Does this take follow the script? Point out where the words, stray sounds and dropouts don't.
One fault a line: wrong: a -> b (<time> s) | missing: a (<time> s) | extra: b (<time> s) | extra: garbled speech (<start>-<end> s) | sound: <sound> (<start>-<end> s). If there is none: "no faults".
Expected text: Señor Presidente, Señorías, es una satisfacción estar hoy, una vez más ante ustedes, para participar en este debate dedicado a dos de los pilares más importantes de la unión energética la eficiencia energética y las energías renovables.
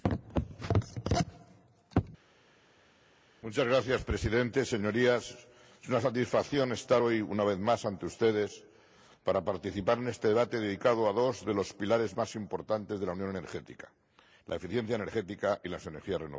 no faults